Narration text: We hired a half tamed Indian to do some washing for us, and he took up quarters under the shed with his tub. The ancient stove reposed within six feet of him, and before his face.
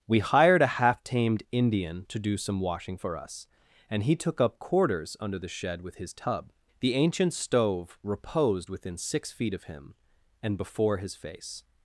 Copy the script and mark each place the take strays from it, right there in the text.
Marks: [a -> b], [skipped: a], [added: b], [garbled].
We hired a half tamed Indian to do some washing for us, and he took up quarters under the shed with his tub. The ancient stove reposed within six feet of him, and before his face.